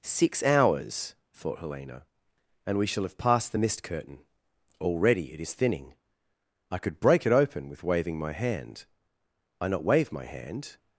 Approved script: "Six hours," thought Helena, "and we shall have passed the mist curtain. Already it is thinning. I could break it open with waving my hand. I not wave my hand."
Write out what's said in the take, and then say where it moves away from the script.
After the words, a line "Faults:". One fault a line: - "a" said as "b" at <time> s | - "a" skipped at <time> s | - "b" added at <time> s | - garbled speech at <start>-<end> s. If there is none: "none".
"Six hours," thought Helena, "and we shall have passed the mist curtain. Already it is thinning. I could break it open with waving my hand. I not wave my hand."
Faults:
none